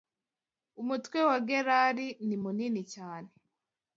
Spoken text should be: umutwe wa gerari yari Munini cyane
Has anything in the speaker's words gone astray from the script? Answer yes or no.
yes